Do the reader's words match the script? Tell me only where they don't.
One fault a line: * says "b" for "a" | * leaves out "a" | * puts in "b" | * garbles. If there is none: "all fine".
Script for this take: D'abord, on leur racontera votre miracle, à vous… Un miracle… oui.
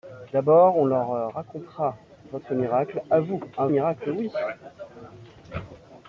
all fine